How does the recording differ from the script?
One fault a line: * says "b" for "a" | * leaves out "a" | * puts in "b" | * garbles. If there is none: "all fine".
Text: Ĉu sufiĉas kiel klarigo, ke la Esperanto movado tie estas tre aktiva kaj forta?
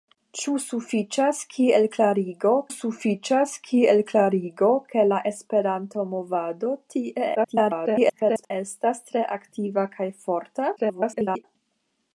* puts in "sufiĉas kiel klarigo"
* garbles
* garbles